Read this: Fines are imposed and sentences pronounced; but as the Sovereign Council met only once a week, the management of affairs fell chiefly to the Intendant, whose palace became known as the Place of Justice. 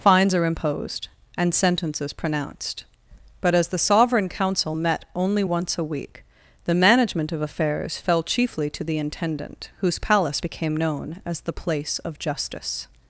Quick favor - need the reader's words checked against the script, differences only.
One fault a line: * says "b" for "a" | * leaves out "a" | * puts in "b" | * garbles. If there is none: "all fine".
all fine